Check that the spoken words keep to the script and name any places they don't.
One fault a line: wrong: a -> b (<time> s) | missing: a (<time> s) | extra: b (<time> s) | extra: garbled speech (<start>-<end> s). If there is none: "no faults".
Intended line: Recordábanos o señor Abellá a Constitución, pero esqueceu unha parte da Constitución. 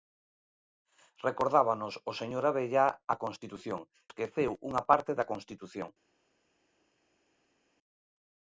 missing: pero (3.8 s)